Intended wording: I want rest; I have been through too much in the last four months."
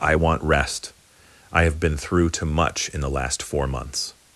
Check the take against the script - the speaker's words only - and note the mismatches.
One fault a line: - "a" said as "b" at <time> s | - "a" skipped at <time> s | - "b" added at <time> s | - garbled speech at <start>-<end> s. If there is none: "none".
none